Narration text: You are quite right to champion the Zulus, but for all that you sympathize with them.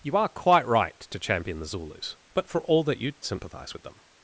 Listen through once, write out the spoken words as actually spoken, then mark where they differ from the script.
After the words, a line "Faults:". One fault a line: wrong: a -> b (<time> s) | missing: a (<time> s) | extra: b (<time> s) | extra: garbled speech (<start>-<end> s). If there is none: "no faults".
You are quite right to champion the Zulus, but for all that you sympathize with them.
Faults:
no faults